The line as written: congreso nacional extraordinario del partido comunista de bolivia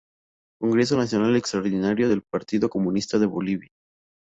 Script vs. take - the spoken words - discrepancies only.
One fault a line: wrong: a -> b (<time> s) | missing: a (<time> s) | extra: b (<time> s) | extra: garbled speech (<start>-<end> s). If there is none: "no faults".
no faults